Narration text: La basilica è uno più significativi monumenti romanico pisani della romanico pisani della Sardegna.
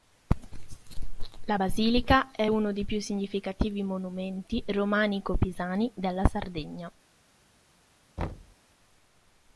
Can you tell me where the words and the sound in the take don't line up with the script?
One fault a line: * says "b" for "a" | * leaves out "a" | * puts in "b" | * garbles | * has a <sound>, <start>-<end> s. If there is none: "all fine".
* puts in "dei"
* leaves out "romanico pisani della"
* has a thud, 8.2-8.6 s